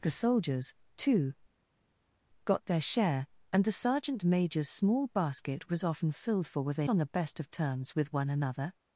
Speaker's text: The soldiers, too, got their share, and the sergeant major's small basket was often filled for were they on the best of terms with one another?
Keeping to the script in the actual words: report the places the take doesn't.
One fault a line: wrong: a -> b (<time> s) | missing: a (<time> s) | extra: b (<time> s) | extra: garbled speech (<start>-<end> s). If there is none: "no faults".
no faults